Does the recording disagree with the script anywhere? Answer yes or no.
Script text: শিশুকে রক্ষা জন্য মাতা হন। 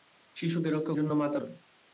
no